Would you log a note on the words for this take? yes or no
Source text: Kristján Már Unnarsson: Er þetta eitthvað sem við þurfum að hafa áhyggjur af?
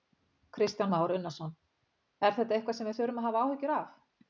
no